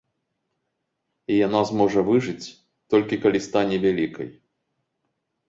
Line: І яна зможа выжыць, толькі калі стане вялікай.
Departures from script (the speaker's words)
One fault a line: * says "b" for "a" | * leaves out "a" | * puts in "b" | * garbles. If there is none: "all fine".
all fine